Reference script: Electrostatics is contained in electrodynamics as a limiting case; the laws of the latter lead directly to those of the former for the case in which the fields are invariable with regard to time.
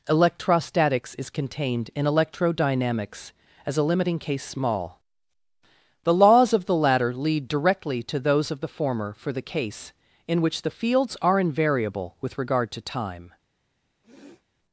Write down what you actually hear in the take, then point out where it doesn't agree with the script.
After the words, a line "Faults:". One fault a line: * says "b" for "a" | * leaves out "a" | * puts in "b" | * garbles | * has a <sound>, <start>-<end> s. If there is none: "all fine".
Electrostatics is contained in electrodynamics as a limiting case; small the laws of the latter lead directly to those of the former for the case in which the fields are invariable with regard to time.
Faults:
* puts in "small"
* has a sniff, 14.0-14.4 s